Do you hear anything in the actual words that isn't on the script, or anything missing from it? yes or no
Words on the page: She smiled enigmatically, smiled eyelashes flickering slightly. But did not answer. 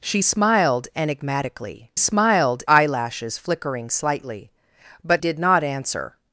no